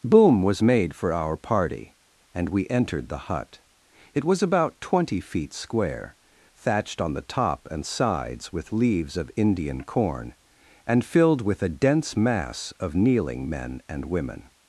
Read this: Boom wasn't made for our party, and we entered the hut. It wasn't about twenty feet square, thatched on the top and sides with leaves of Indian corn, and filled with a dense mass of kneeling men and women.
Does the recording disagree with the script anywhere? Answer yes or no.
yes